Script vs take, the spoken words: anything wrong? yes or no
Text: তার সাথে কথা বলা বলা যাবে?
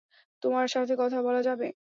yes